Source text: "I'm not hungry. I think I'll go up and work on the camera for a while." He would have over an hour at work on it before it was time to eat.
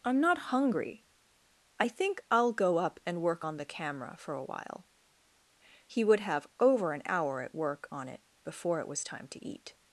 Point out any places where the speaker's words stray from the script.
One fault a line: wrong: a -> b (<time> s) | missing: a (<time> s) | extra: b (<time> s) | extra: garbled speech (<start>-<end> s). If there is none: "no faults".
no faults